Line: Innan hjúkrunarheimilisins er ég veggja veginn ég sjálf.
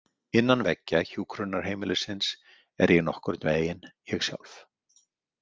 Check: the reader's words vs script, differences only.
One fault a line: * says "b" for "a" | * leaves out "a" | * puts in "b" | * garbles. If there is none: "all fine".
* puts in "veggja"
* says "nokkurn" for "veggja"